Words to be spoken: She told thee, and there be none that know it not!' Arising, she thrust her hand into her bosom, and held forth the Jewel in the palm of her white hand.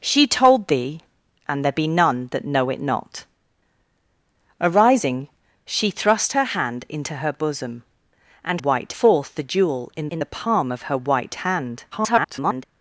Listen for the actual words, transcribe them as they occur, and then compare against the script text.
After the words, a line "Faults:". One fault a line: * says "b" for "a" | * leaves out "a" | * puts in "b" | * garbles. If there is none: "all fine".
She told thee, and there be none that know it not!' Arising, she thrust her hand into her bosom, and white forth the Jewel in in the palm of her white hand. [garbled]
Faults:
* says "white" for "held"
* puts in "in"
* garbles